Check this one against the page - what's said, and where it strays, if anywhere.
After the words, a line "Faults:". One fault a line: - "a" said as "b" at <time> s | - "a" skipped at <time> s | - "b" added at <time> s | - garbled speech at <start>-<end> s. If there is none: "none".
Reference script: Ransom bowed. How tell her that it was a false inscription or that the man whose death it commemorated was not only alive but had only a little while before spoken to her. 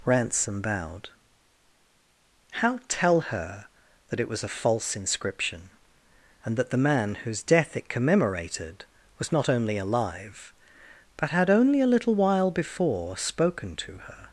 Ransom bowed. How tell her that it was a false inscription and that the man whose death it commemorated was not only alive but had only a little while before spoken to her.
Faults:
- "or" said as "and" at 6.4 s